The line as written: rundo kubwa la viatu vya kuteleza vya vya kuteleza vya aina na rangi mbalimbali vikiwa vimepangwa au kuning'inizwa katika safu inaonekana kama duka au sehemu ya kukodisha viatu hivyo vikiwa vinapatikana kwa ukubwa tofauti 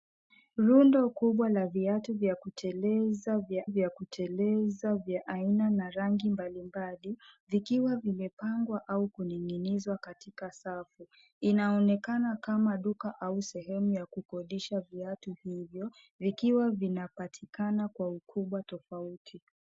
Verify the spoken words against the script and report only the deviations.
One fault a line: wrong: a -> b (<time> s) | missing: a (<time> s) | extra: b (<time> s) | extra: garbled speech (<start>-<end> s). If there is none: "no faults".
no faults